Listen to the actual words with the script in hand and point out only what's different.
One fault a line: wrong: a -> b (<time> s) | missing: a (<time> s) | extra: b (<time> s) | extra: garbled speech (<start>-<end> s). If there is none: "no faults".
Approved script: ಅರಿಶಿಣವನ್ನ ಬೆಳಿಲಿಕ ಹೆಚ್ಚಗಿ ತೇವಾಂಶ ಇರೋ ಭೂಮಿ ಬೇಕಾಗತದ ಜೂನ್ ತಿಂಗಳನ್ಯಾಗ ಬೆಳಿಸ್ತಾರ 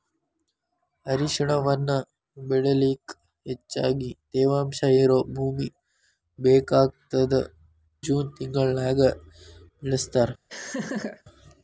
no faults